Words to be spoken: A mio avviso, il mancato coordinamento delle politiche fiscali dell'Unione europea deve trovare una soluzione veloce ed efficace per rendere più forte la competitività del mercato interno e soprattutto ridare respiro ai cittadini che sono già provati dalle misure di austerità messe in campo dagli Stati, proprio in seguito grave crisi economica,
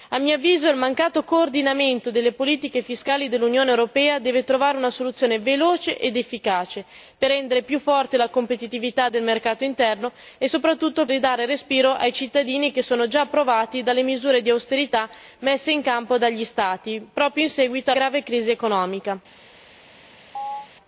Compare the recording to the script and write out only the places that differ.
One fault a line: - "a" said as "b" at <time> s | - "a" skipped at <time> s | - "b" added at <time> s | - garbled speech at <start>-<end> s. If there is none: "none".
none